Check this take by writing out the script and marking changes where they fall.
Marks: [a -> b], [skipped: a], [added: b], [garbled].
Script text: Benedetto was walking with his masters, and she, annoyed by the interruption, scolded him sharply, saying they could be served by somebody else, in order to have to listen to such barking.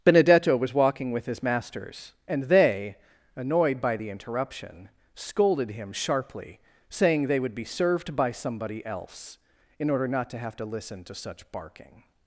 Benedetto was walking with his masters, and [she, -> they] annoyed by the interruption, scolded him sharply, saying they [could -> would] be served by somebody else, in order [added: not] to have to listen to such barking.